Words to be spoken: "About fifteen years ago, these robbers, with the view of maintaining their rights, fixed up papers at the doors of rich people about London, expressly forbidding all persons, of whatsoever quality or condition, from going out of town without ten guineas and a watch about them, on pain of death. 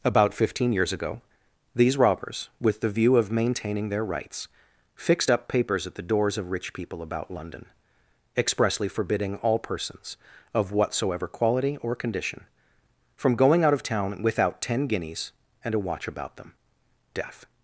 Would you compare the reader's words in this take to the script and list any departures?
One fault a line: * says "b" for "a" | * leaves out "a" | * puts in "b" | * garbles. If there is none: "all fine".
* leaves out "on pain of"